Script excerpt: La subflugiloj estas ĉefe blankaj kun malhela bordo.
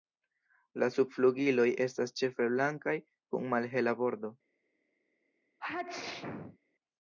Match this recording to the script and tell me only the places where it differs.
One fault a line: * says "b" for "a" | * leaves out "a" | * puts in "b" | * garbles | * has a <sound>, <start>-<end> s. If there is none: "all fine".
* has a sneeze, 5.6-6.6 s